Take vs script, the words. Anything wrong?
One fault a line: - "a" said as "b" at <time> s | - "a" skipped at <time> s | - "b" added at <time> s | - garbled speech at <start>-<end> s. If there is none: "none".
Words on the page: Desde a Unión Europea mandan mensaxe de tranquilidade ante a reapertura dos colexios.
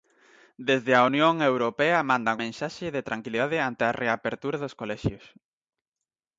none